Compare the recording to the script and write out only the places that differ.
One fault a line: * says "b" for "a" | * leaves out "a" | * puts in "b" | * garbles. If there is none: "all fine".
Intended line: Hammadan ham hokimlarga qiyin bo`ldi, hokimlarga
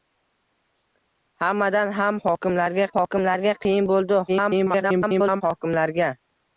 * puts in "hokimlarga"
* garbles